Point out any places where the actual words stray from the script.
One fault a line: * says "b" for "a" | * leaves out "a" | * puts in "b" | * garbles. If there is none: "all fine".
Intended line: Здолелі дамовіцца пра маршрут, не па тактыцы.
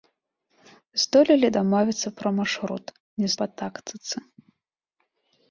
all fine